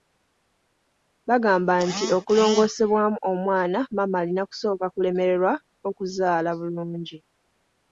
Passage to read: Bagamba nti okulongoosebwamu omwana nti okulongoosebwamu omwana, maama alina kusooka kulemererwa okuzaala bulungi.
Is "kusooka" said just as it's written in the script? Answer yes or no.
yes